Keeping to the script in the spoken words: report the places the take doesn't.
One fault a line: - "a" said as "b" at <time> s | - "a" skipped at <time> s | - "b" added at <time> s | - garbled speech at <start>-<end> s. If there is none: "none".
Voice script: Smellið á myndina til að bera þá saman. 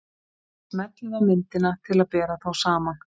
none